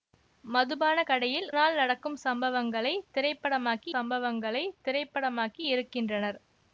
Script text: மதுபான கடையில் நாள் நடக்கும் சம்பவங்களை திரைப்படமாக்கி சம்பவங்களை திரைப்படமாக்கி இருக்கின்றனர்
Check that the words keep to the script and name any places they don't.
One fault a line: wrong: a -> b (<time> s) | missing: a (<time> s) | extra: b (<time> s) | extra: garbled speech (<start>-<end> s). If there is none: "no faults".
no faults